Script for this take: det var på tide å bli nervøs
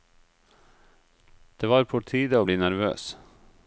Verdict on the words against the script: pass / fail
pass